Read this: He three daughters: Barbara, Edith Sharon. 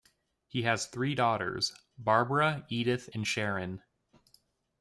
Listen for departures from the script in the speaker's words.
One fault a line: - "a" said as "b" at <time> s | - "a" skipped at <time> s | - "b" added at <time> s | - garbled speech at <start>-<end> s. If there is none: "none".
- "has" added at 0.6 s
- "and" added at 3.1 s